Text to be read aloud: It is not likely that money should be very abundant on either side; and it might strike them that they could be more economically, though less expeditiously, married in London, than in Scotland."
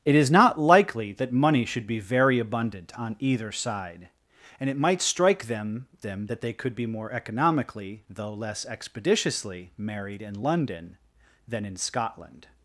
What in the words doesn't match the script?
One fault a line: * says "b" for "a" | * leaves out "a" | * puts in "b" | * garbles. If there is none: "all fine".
* puts in "them"